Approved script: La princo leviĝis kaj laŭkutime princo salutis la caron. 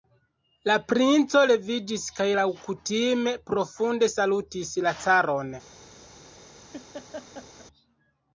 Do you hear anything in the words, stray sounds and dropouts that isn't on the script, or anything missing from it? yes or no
yes